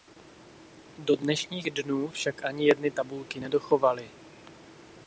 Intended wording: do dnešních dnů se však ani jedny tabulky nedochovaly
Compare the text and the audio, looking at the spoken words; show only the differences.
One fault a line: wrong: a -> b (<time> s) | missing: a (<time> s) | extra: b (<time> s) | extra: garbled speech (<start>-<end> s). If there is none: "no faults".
missing: se (2.1 s)